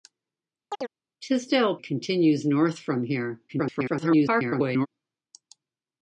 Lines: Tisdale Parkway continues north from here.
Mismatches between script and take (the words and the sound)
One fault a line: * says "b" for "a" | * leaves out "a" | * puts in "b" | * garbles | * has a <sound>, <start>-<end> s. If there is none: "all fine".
* has a chirp, 0.7-0.9 s
* leaves out "Parkway"
* garbles